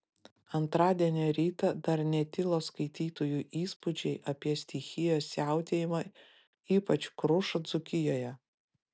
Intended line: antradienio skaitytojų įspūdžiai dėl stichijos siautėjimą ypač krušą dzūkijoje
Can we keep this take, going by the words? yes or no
no